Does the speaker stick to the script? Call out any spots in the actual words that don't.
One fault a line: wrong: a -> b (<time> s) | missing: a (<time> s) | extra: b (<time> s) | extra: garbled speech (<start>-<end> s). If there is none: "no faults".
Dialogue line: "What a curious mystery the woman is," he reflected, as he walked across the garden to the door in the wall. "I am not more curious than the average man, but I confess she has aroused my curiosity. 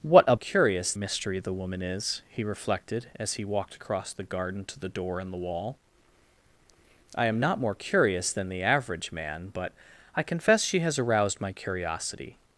no faults